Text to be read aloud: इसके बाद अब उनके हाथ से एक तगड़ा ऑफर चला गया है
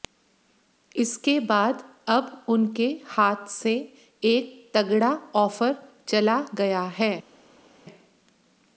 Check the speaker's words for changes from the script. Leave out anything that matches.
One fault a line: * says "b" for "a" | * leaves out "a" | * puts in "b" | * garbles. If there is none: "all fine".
all fine